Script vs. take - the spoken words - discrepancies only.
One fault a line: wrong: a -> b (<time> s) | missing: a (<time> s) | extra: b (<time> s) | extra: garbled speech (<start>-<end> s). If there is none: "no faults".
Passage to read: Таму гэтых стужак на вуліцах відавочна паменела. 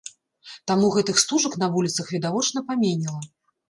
no faults